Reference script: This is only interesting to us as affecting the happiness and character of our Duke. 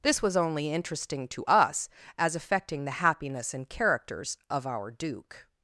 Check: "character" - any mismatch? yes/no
yes